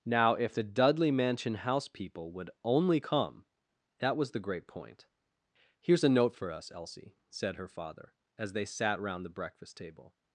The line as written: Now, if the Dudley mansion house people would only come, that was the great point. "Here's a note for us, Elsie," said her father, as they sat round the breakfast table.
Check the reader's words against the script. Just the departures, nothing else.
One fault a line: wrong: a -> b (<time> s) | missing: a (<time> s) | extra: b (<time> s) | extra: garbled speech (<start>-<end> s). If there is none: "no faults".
no faults